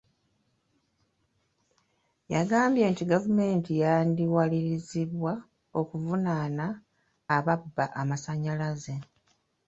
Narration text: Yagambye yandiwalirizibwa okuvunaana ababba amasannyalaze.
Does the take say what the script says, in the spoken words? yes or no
no